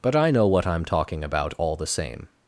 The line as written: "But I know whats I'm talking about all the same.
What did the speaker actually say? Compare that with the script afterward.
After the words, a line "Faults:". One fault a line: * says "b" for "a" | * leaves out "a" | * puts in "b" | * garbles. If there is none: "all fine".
"But I know what I'm talking about all the same.
Faults:
* says "what" for "whats"